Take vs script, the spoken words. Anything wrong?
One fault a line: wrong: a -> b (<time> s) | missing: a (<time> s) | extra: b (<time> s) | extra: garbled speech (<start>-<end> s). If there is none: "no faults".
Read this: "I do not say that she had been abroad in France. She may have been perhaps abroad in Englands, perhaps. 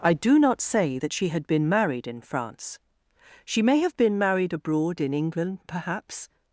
wrong: abroad -> married (1.7 s)
wrong: perhaps -> married (4.2 s)
wrong: Englands -> England (5.1 s)